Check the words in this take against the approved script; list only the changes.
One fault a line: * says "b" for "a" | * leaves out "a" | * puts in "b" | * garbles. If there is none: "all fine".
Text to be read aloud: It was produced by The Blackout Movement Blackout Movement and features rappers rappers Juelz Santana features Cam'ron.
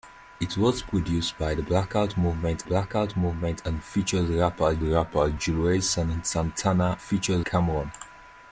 all fine